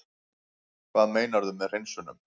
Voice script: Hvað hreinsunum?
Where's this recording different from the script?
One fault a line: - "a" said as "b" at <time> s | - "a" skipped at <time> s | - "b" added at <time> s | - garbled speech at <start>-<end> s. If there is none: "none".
- "meinarðu með" added at 1.2 s